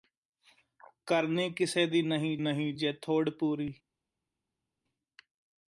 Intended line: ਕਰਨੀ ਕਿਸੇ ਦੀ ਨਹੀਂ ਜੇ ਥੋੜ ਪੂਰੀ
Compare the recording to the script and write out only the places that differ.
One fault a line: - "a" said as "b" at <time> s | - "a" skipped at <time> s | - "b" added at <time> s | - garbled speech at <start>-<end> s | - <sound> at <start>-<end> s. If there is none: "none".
- "ਨਹੀਂ" added at 2.4 s